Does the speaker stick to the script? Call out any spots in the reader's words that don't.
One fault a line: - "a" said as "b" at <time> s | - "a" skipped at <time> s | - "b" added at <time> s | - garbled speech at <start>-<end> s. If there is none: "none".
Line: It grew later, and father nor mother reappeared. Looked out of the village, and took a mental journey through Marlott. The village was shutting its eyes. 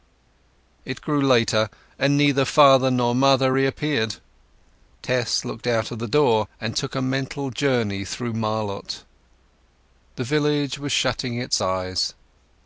- "neither" added at 2.2 s
- "Tess" added at 5.0 s
- "village" said as "door" at 6.1 s